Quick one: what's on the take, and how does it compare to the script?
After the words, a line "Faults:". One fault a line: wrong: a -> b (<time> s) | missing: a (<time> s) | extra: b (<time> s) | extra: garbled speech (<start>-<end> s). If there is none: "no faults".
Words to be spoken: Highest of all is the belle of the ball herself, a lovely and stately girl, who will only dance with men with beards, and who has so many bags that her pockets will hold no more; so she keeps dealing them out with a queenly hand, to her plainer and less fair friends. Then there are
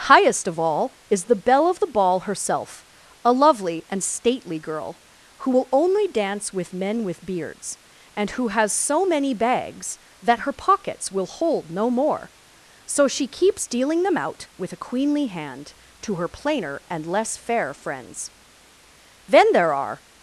Highest of all is the belle of the ball herself, a lovely and stately girl, who will only dance with men with beards, and who has so many bags that her pockets will hold no more; so she keeps dealing them out with a queenly hand, to her plainer and less fair friends. Then there are
Faults:
no faults